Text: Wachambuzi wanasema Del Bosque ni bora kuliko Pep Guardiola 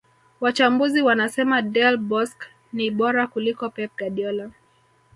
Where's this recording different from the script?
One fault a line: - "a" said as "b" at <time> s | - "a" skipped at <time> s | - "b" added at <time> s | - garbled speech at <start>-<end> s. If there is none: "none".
none